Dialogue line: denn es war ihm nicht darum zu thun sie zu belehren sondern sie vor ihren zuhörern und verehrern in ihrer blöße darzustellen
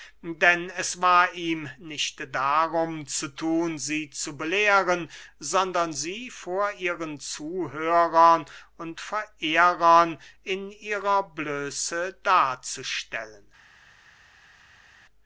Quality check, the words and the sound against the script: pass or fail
pass